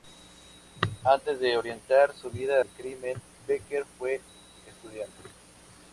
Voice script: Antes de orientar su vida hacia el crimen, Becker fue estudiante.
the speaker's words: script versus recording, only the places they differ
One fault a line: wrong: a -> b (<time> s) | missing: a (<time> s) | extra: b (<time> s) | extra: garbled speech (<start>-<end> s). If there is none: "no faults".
missing: hacia (2.5 s)